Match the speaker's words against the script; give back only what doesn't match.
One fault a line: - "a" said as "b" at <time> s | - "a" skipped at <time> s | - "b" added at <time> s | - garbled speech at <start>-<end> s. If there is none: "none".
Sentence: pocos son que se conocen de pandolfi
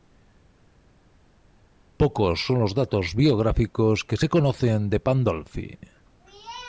- "los datos biográficos" added at 2.6 s